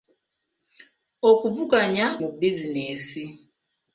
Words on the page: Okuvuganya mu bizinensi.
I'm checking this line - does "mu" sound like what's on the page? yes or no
yes